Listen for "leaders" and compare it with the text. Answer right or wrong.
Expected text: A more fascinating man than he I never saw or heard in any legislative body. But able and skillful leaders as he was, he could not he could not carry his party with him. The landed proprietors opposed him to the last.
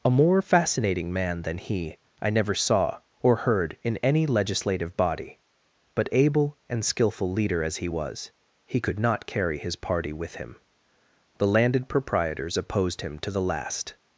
wrong